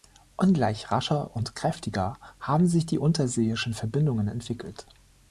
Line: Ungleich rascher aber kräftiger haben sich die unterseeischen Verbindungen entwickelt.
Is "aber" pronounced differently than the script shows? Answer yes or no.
yes